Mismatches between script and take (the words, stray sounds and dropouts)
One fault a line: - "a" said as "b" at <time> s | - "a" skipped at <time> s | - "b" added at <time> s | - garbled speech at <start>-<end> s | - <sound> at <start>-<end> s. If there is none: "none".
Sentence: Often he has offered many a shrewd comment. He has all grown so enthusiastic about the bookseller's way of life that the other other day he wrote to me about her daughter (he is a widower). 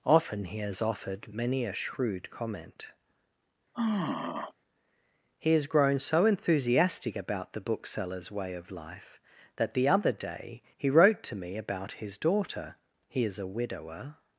- sigh at 3.7-4.5 s
- "all" skipped at 5.7 s
- "other" skipped at 10.1 s
- "her" said as "his" at 11.9 s